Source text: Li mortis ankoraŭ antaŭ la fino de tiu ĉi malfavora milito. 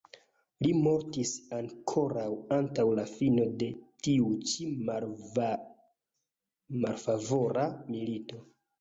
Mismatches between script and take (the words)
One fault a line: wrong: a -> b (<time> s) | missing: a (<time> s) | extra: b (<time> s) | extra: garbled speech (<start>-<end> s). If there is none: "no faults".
no faults